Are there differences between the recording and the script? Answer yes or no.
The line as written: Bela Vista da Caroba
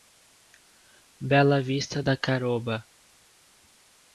no